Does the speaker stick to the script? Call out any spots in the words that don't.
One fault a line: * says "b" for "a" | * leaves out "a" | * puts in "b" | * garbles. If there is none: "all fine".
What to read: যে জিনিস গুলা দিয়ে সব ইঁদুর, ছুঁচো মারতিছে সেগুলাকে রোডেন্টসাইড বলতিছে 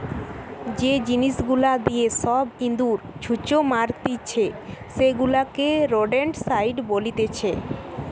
all fine